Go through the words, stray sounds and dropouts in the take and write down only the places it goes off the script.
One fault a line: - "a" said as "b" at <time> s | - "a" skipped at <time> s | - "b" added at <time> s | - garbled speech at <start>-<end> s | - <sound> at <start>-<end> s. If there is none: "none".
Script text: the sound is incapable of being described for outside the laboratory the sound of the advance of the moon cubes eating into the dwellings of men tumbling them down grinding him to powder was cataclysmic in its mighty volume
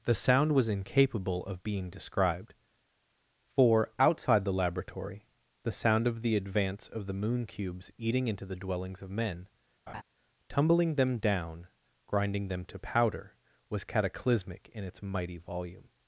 - "is" said as "was" at 0.5 s
- laugh at 9.9-10.0 s
- "him" said as "them" at 12.5 s